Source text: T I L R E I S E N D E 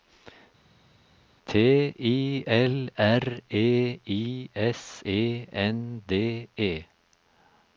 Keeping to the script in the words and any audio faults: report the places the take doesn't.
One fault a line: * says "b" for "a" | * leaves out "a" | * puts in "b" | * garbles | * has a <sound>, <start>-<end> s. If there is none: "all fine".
all fine